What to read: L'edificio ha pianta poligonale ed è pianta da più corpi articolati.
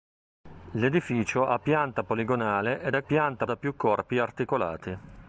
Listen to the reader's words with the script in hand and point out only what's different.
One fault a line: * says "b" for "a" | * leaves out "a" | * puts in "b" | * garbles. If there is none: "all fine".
all fine